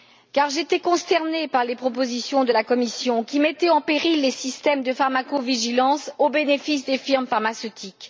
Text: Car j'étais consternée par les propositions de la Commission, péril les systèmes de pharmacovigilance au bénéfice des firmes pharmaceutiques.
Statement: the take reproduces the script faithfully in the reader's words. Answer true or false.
false